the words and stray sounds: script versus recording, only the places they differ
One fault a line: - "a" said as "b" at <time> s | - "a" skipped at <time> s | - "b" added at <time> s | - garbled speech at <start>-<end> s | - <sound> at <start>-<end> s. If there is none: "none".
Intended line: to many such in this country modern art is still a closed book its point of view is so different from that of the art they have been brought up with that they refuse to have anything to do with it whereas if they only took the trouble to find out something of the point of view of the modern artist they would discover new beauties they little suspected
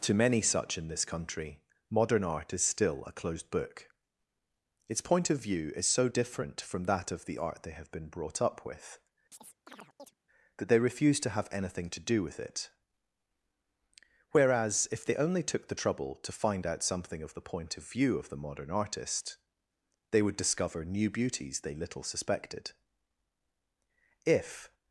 - chirp at 9.3-10.1 s
- "if" added at 24.2 s